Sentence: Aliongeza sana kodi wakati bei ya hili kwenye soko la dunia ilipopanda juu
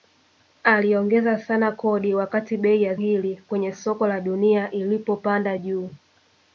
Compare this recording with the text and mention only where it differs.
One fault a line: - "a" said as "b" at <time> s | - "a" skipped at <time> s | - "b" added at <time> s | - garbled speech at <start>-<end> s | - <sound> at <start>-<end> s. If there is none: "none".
none